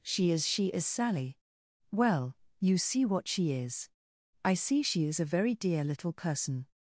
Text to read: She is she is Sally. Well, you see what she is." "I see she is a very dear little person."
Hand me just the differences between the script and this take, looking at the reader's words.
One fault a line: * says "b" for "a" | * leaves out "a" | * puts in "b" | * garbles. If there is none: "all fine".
all fine